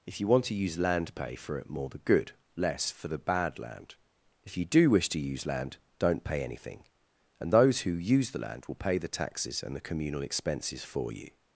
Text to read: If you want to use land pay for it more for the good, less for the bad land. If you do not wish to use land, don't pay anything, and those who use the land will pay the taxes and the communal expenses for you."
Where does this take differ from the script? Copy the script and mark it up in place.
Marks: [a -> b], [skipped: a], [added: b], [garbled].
If you want to use land pay for it more [skipped: for] the good, less for the bad land. If you do [skipped: not] wish to use land, don't pay anything, and those who use the land will pay the taxes and the communal expenses for you."